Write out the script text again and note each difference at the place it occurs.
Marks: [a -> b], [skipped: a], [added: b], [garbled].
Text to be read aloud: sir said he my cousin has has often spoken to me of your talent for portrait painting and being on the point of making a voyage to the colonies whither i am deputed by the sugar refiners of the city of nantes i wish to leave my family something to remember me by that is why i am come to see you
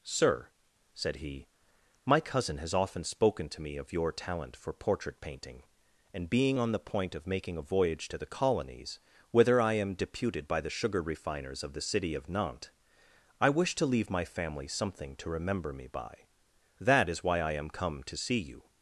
sir said he my cousin has [skipped: has] often spoken to me of your talent for portrait painting and being on the point of making a voyage to the colonies whither i am deputed by the sugar refiners of the city of nantes i wish to leave my family something to remember me by that is why i am come to see you